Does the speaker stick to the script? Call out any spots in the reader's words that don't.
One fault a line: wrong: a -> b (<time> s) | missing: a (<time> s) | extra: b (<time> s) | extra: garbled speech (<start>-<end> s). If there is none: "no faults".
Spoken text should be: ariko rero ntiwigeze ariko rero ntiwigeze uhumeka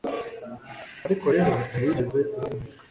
missing: ariko rero ntiwigeze (2.2 s)